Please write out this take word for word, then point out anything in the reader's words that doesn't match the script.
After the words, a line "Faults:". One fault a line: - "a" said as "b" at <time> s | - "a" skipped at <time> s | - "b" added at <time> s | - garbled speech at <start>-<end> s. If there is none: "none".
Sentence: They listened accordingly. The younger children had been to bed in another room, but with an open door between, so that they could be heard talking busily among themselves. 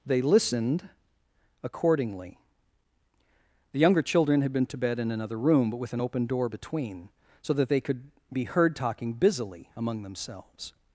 They listened accordingly. The younger children had been to bed in another room, but with an open door between, so that they could be heard talking busily among themselves.
Faults:
none